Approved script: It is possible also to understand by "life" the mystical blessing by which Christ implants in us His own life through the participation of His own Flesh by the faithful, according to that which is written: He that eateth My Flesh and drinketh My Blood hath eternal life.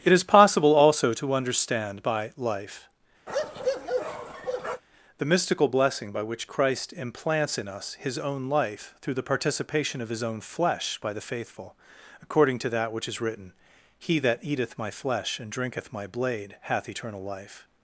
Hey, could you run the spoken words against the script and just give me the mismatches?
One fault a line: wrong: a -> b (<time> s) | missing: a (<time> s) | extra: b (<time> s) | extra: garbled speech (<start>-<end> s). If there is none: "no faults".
wrong: Blood -> Blade (16.1 s)